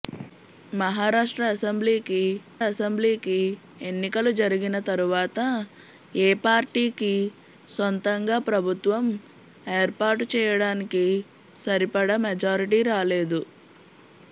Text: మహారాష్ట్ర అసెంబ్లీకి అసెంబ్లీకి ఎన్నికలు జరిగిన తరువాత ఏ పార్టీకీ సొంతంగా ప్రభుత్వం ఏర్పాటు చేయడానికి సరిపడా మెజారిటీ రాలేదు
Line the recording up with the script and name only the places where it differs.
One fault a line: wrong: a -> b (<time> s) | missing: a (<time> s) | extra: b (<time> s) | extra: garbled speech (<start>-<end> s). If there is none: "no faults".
no faults